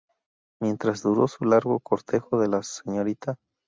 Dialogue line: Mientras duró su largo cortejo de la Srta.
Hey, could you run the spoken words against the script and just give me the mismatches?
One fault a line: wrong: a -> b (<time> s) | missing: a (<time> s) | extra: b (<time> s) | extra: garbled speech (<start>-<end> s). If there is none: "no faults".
no faults